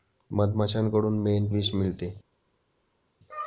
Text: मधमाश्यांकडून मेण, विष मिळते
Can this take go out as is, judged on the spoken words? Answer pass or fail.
pass